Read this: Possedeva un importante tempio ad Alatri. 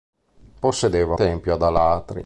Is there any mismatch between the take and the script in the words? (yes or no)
yes